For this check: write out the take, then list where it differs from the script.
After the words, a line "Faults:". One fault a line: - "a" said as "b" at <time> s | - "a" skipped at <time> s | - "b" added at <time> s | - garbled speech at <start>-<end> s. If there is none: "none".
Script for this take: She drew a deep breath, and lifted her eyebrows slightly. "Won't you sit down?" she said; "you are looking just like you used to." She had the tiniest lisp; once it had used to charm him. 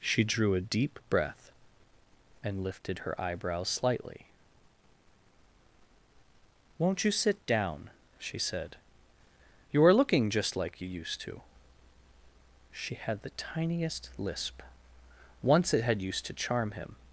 She drew a deep breath, and lifted her eyebrows slightly. "Won't you sit down?" she said; "you are looking just like you used to." She had the tiniest lisp; once it had used to charm him.
Faults:
none